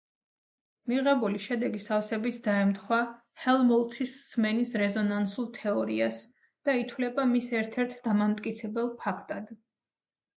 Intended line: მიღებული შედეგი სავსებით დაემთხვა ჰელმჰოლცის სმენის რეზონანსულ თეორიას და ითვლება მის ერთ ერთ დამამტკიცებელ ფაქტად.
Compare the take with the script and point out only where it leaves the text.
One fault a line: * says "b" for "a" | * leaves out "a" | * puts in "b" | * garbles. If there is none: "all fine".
all fine